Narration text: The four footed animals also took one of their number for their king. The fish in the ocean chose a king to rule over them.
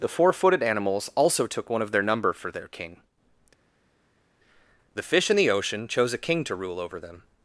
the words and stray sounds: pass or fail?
pass